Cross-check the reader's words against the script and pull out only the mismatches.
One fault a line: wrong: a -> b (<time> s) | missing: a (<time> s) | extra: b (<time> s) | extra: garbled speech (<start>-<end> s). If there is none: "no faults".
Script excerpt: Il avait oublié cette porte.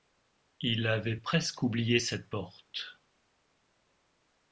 extra: presque (1.1 s)